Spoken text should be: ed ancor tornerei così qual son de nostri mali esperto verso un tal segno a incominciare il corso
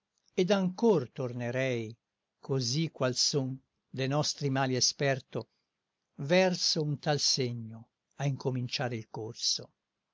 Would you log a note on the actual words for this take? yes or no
no